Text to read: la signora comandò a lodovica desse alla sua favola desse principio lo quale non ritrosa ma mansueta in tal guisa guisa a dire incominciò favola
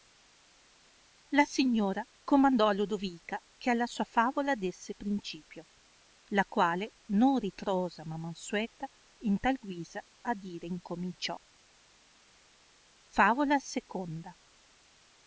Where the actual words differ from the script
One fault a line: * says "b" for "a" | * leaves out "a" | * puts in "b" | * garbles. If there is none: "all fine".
* says "che" for "desse"
* says "la" for "lo"
* leaves out "guisa"